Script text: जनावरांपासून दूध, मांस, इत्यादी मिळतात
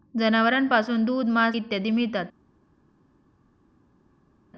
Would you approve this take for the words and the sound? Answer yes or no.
yes